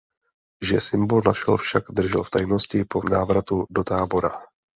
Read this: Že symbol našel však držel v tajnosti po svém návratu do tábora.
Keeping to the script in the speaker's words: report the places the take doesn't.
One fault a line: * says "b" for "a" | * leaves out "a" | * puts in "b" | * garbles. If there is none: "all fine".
* leaves out "svém"